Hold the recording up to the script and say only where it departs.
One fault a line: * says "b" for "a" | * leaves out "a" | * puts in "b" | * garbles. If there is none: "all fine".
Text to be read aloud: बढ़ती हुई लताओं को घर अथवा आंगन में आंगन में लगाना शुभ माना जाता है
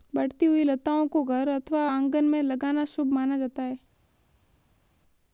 * leaves out "आंगन में"